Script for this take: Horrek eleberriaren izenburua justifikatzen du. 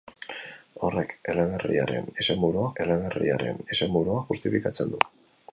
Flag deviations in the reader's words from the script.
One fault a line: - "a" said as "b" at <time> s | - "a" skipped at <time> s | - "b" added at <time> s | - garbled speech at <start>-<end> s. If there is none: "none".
- "eleberriaren izenburua" added at 2.8 s